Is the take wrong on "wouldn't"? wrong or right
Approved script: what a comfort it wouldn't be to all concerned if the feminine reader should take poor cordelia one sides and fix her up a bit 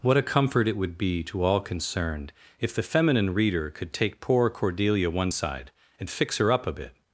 wrong